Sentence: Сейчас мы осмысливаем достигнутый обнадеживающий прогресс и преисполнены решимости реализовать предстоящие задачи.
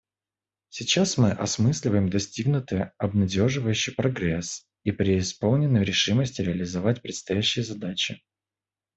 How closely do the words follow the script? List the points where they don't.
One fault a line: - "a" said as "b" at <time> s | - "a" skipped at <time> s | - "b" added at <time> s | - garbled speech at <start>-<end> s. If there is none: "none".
none